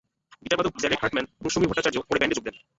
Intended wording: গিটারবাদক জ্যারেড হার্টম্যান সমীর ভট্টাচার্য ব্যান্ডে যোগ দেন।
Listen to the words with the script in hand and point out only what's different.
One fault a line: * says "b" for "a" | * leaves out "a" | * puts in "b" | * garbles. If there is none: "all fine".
* puts in "এবং"
* puts in "পরে"